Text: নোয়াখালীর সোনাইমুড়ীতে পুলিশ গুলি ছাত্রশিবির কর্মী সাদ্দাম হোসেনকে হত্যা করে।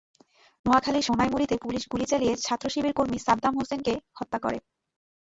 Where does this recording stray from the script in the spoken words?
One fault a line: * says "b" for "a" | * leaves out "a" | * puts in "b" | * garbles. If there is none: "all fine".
* puts in "চালিয়ে"